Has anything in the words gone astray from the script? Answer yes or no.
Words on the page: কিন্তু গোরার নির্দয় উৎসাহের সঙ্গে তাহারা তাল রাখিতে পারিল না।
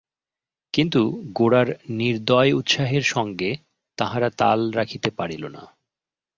no